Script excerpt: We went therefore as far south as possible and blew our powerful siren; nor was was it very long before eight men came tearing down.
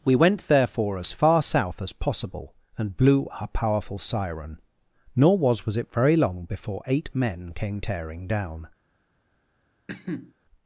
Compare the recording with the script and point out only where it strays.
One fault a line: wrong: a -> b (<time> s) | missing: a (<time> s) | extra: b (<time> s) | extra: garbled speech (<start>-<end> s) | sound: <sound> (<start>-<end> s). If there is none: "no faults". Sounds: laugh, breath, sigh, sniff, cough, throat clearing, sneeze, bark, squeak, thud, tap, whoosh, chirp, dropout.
sound: cough (9.9-10.3 s)